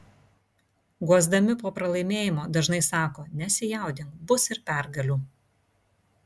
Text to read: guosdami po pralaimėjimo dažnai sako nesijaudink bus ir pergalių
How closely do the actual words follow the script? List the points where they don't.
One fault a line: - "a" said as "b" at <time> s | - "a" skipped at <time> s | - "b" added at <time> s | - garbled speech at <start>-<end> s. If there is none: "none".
none